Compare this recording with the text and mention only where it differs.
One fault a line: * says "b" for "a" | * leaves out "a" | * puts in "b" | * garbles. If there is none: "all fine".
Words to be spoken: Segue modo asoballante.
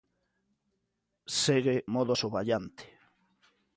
all fine